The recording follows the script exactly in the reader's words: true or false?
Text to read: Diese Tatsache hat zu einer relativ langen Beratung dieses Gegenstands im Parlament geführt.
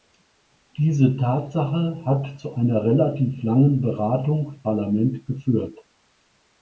false